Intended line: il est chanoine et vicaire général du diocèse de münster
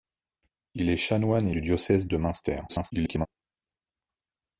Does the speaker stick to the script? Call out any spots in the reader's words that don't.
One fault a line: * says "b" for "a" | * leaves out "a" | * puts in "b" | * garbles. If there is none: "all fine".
* leaves out "vicaire général"
* garbles